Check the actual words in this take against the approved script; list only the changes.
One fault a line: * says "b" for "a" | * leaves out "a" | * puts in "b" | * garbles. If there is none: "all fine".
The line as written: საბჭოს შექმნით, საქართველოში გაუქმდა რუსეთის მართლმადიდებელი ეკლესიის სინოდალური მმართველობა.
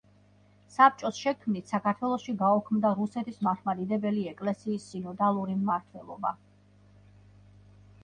all fine